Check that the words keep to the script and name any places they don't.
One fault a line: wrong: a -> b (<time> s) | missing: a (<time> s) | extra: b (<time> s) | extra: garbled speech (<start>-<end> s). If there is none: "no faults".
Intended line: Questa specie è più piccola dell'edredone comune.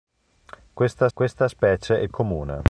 extra: questa (1.1 s)
missing: più piccola dell'edredone (2.1 s)